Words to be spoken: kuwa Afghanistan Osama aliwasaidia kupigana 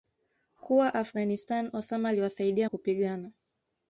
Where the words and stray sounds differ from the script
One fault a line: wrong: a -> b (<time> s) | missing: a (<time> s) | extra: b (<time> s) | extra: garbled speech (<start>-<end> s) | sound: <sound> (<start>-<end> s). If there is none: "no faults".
no faults